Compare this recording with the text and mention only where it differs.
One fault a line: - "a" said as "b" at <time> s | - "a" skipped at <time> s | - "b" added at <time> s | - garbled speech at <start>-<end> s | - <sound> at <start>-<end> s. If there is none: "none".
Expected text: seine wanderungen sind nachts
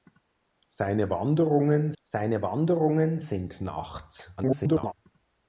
- "seine wanderungen" added at 2.0 s
- garbled speech at 4.4-4.9 s